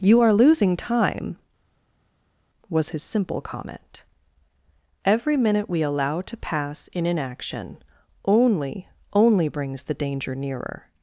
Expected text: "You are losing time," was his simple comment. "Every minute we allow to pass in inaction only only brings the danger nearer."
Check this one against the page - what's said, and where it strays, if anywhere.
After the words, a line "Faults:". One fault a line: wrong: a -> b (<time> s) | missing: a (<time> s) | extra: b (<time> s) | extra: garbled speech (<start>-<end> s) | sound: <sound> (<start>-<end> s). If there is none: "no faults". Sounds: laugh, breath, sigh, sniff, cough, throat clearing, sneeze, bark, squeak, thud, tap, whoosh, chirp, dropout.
"You are losing time," was his simple comment. "Every minute we allow to pass in inaction only only brings the danger nearer."
Faults:
no faults